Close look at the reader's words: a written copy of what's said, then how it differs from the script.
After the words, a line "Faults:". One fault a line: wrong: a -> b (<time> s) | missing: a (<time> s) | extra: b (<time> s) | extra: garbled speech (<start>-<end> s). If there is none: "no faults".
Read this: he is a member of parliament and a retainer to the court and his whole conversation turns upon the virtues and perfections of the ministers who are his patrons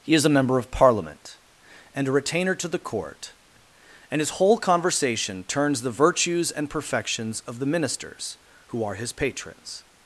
he is a member of parliament and a retainer to the court and his whole conversation turns the virtues and perfections of the ministers who are his patrons
Faults:
missing: upon (5.8 s)